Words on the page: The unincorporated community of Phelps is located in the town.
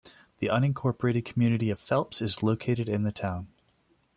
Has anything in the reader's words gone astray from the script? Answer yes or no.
no